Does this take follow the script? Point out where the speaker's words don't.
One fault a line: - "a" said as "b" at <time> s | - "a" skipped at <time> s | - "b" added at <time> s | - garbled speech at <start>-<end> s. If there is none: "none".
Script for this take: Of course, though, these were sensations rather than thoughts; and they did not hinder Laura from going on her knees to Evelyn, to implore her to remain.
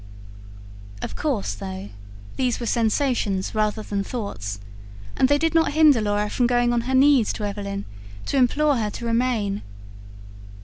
none